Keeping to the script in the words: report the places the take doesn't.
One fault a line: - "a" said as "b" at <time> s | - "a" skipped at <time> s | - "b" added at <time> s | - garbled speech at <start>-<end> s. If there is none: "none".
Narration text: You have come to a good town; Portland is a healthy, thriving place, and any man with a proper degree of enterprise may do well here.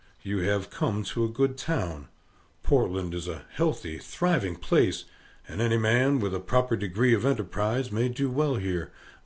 none